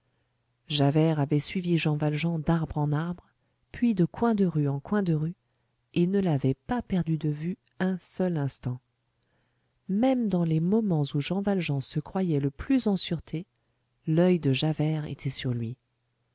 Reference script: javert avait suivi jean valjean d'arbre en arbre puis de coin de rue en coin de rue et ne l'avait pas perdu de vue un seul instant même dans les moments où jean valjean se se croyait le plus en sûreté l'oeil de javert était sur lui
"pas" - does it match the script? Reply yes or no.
yes